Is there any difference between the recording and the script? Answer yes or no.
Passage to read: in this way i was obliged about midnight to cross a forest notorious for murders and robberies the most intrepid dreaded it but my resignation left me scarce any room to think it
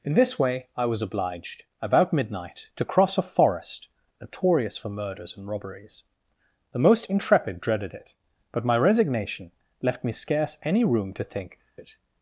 no